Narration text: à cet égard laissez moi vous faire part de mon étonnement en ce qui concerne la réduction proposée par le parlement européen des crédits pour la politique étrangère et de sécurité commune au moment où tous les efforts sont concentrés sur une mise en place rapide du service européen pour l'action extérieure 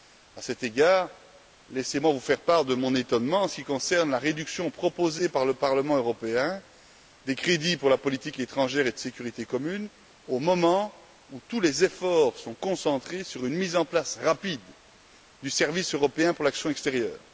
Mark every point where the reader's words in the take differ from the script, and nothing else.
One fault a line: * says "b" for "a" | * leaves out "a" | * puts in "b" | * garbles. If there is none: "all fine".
all fine